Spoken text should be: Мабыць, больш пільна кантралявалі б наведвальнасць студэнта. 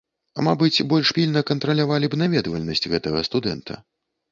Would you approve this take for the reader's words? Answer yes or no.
no